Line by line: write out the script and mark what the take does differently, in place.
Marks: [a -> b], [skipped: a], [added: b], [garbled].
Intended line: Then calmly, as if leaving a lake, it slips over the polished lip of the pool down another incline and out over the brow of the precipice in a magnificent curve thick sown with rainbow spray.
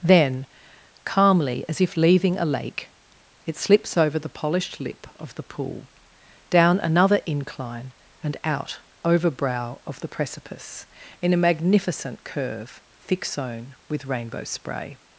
Then calmly, as if leaving a lake, it slips over the polished lip of the pool down another incline and out over [skipped: the] brow of the precipice in a magnificent curve thick sown with rainbow spray.